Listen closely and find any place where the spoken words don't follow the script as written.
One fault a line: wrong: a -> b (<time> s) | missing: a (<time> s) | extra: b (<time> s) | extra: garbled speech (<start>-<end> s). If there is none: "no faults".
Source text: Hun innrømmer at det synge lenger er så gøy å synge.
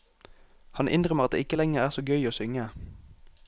wrong: Hun -> Han (0.7 s)
wrong: synge -> ikke (1.4 s)